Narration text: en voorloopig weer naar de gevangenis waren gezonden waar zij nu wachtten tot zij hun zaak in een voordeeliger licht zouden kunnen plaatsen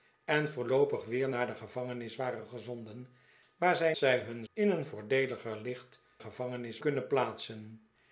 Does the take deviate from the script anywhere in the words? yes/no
yes